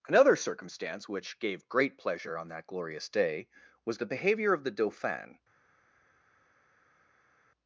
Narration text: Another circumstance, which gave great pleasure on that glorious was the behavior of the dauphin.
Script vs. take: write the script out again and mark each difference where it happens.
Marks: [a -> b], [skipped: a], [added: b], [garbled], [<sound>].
Another circumstance, which gave great pleasure on that glorious [added: day] was the behavior of the dauphin.